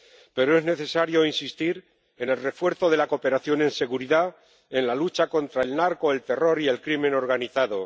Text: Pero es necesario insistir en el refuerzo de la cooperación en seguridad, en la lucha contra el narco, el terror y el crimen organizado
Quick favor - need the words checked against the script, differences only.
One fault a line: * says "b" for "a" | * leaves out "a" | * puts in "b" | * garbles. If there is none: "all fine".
all fine